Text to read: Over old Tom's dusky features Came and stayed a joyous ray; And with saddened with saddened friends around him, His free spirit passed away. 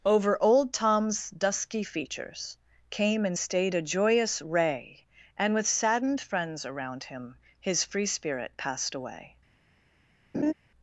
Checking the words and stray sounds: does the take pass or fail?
fail